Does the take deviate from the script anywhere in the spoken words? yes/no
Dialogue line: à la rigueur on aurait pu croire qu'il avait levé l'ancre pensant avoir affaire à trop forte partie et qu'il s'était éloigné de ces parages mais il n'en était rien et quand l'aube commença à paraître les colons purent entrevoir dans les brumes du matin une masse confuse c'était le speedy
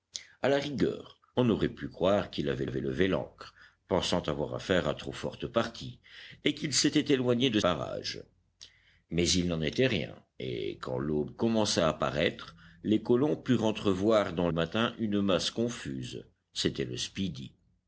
yes